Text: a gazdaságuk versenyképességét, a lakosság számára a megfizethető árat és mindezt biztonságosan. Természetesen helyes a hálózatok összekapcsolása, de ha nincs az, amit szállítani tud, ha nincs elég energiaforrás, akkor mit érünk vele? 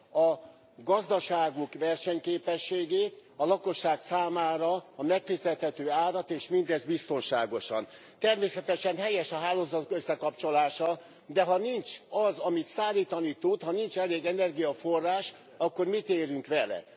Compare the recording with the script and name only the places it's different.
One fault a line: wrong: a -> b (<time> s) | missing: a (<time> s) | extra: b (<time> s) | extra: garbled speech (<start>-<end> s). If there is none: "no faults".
no faults